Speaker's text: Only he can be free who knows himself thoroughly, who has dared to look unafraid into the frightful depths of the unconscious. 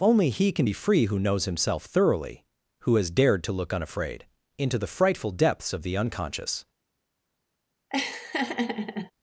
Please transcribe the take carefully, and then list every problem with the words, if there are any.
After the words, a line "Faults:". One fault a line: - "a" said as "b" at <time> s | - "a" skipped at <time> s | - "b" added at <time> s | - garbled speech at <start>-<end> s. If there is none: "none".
Only he can be free who knows himself thoroughly, who has dared to look unafraid into the frightful depths of the unconscious.
Faults:
none